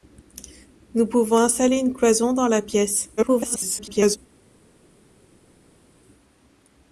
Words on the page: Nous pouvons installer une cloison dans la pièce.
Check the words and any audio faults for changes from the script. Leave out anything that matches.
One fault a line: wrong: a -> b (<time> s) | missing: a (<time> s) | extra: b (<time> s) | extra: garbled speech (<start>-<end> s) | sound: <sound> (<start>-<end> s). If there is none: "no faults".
extra: garbled speech (3.2-4.2 s)